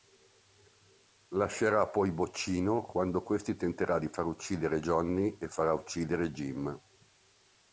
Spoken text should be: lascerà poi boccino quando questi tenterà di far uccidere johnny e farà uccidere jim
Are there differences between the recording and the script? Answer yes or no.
no